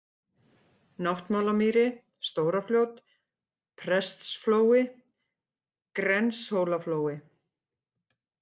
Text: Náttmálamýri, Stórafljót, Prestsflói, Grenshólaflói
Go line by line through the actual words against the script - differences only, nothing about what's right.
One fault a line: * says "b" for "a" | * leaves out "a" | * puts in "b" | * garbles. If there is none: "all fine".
all fine